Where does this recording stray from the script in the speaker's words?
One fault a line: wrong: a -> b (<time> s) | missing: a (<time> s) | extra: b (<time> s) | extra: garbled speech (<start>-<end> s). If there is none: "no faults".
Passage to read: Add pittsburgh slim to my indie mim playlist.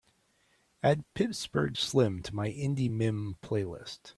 no faults